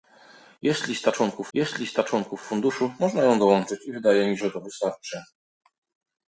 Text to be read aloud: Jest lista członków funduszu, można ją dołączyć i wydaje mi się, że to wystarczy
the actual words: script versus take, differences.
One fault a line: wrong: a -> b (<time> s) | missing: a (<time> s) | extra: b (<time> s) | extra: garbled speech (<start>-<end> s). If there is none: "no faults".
extra: jest lista członków (1.5 s)
missing: się (4.4 s)